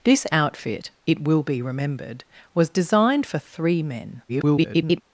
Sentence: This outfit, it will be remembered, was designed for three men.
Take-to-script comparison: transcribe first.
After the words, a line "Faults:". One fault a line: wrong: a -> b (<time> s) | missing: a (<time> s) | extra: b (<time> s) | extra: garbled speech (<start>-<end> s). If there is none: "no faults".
This outfit, it will be remembered, was designed for three men. [garbled]
Faults:
extra: garbled speech (4.3-5.0 s)